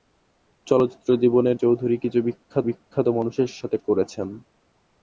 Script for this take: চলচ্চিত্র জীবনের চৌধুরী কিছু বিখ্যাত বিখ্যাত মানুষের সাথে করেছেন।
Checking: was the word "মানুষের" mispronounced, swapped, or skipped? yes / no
no